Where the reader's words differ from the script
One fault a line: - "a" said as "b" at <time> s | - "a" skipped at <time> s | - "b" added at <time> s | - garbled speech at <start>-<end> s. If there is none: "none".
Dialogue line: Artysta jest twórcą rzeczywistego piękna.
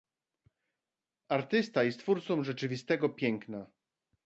none